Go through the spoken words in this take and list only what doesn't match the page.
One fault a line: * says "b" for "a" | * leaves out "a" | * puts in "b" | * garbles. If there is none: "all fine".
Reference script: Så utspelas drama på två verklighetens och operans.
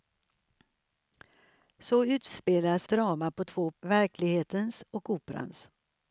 all fine